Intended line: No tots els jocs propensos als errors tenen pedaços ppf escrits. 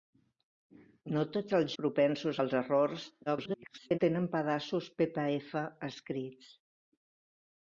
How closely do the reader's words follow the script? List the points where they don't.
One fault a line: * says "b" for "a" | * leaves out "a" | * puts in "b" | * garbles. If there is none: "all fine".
* leaves out "jocs"
* garbles